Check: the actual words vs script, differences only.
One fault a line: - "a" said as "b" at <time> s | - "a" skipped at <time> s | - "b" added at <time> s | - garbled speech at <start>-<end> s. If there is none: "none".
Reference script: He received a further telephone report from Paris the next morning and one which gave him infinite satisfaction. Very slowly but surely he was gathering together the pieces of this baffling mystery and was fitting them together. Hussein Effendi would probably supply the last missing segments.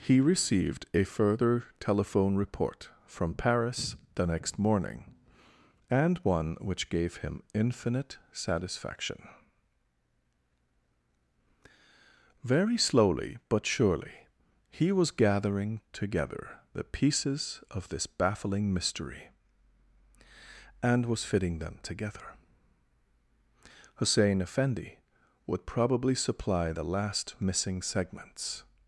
none